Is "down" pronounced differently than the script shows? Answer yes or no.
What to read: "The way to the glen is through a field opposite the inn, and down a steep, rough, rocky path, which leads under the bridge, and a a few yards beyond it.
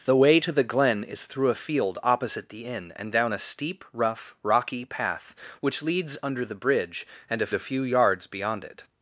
no